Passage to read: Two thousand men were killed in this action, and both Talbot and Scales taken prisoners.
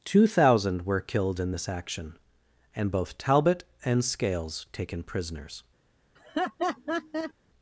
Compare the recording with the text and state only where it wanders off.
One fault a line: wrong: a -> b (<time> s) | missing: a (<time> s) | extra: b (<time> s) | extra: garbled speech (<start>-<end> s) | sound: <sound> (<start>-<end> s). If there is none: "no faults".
missing: men (0.9 s)
sound: laugh (6.2-7.3 s)